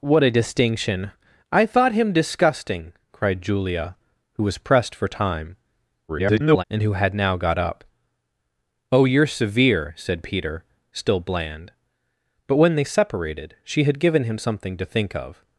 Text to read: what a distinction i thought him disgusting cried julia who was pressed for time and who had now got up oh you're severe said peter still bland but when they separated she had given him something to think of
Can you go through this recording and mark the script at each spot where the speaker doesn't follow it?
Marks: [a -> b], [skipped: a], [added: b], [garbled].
what a distinction i thought him disgusting cried julia who was pressed for time [garbled] and who had now got up oh you're severe said peter still bland but when they separated she had given him something to think of